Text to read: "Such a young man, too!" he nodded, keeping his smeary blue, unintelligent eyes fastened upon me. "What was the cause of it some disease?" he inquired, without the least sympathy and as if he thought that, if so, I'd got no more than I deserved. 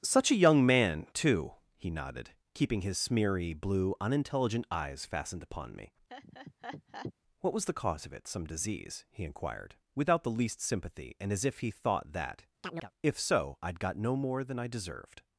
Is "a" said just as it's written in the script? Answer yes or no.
yes